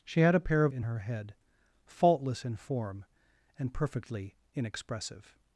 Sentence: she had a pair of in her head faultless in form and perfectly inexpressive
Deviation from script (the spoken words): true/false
false